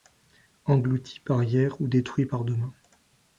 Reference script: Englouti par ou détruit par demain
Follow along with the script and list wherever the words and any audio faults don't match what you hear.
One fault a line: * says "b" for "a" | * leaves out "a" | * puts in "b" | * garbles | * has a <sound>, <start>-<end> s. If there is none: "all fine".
* puts in "hier"